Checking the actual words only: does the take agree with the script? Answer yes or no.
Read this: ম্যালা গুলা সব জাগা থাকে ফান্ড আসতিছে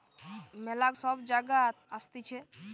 no